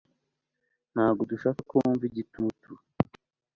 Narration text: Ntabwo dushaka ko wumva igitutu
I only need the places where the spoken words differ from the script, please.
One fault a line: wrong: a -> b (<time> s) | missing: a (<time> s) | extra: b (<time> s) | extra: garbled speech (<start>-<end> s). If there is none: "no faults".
no faults